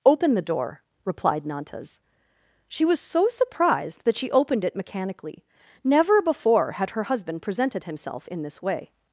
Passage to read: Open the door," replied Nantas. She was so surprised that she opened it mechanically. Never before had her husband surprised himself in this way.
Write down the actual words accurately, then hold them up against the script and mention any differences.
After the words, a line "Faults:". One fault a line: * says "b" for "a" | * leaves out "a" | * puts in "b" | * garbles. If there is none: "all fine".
Open the door," replied Nantas. She was so surprised that she opened it mechanically. Never before had her husband presented himself in this way.
Faults:
* says "presented" for "surprised"